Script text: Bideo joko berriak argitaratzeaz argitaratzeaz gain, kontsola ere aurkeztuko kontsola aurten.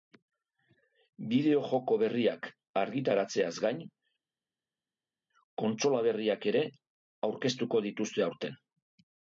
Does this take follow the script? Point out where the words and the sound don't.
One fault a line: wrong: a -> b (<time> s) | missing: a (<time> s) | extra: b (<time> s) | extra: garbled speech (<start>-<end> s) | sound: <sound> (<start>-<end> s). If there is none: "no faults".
missing: argitaratzeaz (3.5 s)
extra: berriak (6.1 s)
wrong: kontsola -> dituzte (7.9 s)